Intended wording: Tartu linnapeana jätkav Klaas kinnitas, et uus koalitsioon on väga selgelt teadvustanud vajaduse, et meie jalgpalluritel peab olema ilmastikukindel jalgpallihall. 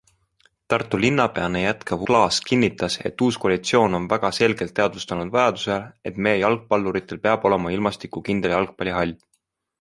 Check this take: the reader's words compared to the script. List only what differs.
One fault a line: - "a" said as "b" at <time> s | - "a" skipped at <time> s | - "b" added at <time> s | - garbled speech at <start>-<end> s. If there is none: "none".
none